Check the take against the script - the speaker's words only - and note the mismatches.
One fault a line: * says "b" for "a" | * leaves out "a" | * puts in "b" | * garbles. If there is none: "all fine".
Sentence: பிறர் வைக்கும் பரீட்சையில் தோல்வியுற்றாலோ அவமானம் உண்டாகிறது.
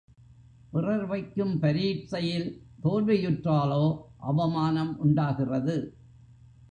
all fine